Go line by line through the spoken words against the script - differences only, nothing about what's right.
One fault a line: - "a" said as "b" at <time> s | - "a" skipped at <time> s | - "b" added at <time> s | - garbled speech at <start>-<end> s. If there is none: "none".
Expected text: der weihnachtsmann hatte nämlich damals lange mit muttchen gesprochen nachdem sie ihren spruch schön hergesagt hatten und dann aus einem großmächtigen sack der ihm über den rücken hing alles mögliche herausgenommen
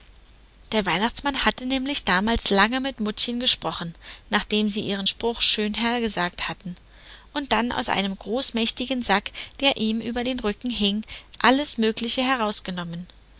none